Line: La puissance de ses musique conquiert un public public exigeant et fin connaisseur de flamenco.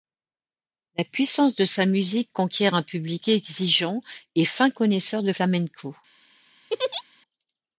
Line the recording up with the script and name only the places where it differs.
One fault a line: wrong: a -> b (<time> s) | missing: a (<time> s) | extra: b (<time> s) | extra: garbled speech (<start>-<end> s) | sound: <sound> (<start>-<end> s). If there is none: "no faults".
wrong: ses -> sa (1.6 s)
missing: public (3.3 s)
sound: laugh (6.7-7.0 s)